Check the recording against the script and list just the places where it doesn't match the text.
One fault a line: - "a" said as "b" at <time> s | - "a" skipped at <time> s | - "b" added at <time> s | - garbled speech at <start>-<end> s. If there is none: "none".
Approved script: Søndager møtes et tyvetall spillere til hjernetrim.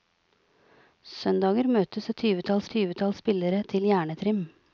- "tyvetall" added at 2.7 s